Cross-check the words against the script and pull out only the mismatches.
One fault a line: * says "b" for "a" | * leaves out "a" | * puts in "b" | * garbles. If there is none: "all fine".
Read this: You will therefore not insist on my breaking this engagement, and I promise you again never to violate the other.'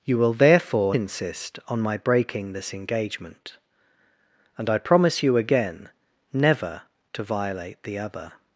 * leaves out "not"